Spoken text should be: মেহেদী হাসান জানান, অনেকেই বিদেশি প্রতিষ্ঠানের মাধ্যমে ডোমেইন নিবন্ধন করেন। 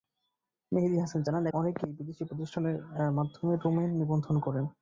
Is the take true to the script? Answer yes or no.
yes